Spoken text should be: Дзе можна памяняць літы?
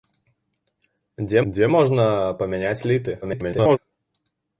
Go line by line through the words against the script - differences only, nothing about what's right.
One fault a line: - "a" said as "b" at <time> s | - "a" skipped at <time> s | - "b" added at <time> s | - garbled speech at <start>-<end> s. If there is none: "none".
- "дзе" added at 1.5 s
- garbled speech at 3.2-3.8 s